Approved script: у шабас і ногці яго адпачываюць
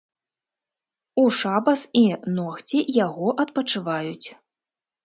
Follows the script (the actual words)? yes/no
yes